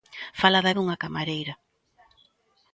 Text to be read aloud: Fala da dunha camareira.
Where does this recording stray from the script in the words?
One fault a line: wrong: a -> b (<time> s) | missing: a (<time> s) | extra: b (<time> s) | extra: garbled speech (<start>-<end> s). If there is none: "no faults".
no faults